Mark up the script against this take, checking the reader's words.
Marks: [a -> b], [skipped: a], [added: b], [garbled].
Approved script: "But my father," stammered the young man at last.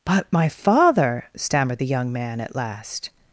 "But my father," stammered the young man at last.